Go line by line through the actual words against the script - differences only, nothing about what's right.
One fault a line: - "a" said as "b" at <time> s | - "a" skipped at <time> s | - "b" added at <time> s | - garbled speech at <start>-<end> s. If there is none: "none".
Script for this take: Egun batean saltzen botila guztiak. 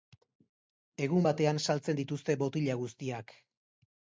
- "dituzte" added at 2.0 s